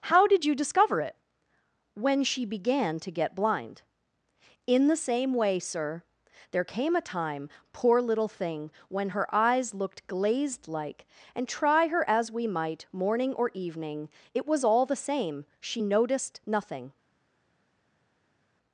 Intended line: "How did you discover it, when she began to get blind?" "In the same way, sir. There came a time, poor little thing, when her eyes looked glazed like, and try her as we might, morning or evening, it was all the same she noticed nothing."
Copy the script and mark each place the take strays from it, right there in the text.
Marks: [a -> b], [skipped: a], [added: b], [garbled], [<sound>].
"How did you discover it, when she began to get blind?" "In the same way, sir. There came a time, poor little thing, when her eyes looked glazed like, and try her as we might, morning or evening, it was all the same she noticed nothing."